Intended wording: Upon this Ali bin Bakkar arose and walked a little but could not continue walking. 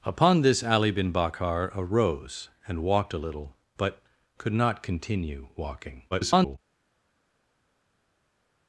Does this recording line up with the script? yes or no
no